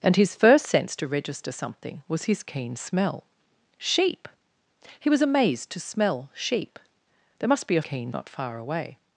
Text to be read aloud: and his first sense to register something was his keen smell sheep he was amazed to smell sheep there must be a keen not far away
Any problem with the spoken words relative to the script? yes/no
no